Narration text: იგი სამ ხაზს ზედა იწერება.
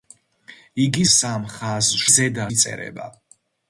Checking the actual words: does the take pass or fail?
pass